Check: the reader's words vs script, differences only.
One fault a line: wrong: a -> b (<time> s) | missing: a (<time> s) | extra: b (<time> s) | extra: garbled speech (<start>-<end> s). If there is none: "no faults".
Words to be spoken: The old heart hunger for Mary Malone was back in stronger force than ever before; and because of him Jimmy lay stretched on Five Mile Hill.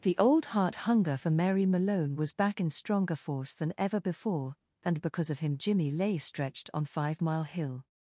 no faults